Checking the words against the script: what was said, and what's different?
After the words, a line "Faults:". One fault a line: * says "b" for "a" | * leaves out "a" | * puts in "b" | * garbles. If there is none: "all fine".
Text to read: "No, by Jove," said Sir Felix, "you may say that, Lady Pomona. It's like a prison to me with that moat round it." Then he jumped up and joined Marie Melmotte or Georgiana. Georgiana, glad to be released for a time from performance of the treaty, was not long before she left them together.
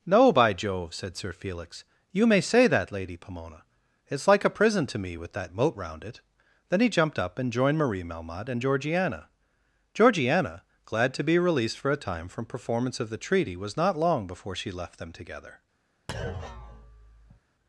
"No, by Jove," said Sir Felix, "you may say that, Lady Pomona. It's like a prison to me with that moat round it." Then he jumped up and joined Marie Melmotte and Georgiana. Georgiana, glad to be released for a time from performance of the treaty, was not long before she left them together.
Faults:
* says "and" for "or"